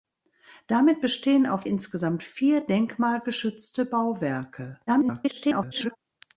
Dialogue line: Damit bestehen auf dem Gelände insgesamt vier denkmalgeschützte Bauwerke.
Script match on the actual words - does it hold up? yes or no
no